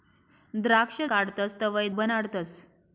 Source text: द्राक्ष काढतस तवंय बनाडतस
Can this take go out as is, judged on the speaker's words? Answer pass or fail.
pass